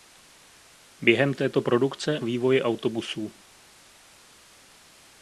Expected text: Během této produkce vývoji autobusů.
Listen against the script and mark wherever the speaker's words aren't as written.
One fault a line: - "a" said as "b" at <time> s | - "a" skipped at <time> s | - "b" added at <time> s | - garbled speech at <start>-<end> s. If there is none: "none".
none